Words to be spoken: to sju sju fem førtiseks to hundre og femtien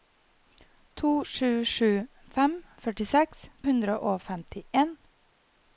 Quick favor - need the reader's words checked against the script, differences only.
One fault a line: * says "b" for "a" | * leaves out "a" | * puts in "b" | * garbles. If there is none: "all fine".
* leaves out "to"